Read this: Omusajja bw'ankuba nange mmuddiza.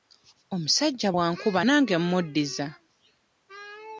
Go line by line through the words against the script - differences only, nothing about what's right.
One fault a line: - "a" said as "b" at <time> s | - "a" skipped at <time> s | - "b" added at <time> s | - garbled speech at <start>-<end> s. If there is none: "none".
none